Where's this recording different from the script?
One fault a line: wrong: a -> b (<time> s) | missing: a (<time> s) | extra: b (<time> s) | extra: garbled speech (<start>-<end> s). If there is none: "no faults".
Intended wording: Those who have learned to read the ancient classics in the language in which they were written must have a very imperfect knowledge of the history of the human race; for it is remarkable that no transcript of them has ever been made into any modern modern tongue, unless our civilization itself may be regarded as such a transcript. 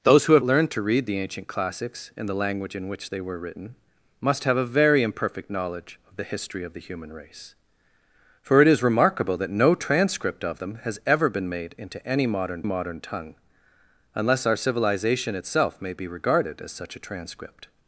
no faults